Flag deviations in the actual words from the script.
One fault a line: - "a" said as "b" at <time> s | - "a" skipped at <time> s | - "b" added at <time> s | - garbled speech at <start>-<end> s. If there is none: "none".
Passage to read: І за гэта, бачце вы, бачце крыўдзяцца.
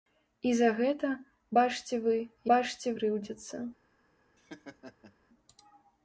none